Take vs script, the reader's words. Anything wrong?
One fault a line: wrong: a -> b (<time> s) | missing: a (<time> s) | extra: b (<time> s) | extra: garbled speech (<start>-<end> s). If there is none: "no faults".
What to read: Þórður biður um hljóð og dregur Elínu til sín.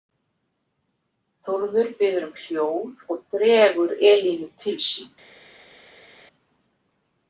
no faults